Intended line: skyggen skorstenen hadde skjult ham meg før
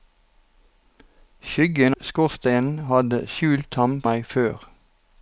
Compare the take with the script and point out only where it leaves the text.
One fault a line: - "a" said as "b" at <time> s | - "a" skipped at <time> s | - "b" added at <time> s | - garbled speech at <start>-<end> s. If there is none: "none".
none